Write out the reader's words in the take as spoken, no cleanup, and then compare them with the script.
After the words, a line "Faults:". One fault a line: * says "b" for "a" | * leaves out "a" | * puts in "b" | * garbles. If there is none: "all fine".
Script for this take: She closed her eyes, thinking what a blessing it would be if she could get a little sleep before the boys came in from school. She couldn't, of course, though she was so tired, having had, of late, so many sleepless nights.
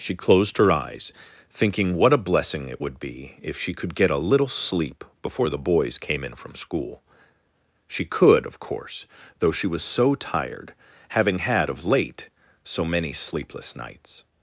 She closed her eyes, thinking what a blessing it would be if she could get a little sleep before the boys came in from school. She could, of course, though she was so tired, having had, of late, so many sleepless nights.
Faults:
* says "could" for "couldn't"